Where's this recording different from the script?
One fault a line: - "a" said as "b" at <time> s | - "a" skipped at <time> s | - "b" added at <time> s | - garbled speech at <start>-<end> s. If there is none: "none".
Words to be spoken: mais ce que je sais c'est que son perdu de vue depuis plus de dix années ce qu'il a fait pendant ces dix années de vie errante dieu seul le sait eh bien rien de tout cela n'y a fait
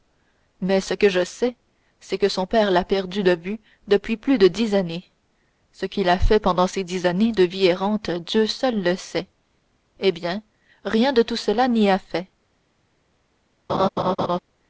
- "père l'a" added at 2.5 s